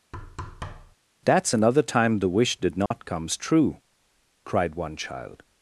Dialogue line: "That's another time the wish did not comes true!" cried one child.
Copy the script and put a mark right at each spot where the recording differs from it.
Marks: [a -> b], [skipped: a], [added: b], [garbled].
"That's another time the wish did not comes true!" cried one child.